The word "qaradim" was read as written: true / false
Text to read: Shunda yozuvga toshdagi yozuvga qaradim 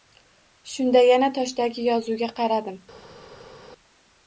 true